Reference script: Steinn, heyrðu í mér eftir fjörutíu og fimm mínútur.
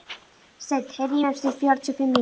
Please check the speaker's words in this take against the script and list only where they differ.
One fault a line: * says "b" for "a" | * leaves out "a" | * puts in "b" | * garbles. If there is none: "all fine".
all fine